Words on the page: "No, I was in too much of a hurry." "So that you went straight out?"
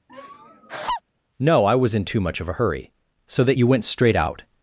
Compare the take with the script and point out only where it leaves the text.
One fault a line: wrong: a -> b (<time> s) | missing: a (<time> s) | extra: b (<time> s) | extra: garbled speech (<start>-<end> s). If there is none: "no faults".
no faults